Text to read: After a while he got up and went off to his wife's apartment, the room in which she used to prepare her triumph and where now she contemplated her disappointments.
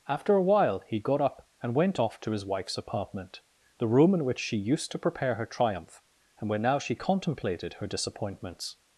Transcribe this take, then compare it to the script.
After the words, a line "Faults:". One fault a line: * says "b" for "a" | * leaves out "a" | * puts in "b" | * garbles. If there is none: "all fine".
After a while he got up and went off to his wife's apartment, the room in which she used to prepare her triumph and where now she contemplated her disappointments.
Faults:
all fine